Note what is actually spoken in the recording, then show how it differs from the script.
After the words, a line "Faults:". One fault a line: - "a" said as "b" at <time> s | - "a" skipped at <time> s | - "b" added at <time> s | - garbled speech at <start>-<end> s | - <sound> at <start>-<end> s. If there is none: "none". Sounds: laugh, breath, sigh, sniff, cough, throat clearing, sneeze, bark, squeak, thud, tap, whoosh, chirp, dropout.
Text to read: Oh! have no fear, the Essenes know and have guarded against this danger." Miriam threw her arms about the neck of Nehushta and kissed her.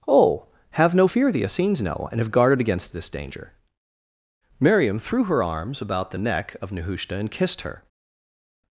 Oh! have no fear, the Essenes know and have guarded against this danger." Miriam threw her arms about the neck of Nehushta and kissed her.
Faults:
none